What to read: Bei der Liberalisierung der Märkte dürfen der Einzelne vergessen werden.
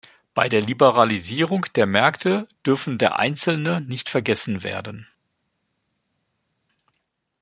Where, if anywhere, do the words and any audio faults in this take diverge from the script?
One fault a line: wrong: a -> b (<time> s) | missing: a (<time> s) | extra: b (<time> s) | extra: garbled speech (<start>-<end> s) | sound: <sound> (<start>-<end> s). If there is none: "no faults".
extra: nicht (3.8 s)